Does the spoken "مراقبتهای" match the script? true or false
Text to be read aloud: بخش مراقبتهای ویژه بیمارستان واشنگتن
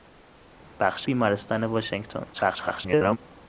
false